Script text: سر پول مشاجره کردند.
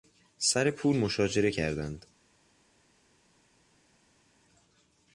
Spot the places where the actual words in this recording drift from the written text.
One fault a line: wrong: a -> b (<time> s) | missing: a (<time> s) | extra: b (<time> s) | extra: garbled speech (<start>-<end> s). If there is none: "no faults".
no faults